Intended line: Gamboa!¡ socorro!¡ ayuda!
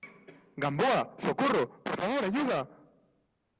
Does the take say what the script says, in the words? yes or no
no